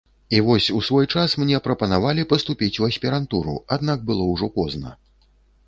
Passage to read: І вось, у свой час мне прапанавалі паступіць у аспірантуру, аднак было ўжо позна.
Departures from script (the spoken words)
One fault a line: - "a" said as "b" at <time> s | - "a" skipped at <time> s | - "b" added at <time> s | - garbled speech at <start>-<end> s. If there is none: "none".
none